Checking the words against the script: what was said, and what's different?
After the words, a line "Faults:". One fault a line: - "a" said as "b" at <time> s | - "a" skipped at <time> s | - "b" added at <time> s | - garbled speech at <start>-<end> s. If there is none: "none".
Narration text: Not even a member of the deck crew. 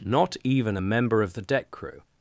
Not even a member of the deck crew.
Faults:
none